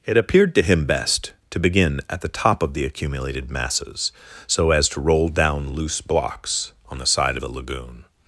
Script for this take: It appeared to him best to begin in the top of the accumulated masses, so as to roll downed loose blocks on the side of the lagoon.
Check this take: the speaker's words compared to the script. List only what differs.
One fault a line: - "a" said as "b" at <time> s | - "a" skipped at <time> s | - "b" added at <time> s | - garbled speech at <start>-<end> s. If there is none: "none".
- "in" said as "at" at 2.1 s
- "downed" said as "down" at 5.3 s